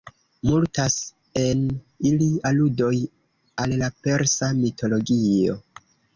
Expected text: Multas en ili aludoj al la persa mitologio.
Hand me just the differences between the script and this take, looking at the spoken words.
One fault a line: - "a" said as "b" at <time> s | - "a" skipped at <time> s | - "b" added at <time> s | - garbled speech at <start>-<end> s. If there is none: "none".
none